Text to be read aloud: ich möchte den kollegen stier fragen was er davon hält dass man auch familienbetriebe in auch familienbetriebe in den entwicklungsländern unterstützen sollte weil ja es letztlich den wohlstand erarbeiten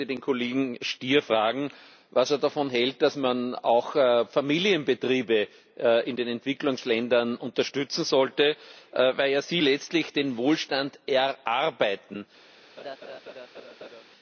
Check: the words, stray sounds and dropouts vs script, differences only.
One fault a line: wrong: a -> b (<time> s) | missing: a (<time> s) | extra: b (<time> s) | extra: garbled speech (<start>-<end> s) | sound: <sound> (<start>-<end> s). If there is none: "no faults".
missing: auch familienbetriebe in (6.2 s)
wrong: es -> sie (9.4 s)
sound: laugh (12.8-14.0 s)